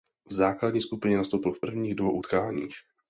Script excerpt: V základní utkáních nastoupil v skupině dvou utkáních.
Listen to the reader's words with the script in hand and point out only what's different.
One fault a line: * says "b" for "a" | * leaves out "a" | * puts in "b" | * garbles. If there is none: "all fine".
* says "skupině" for "utkáních"
* says "prvních" for "skupině"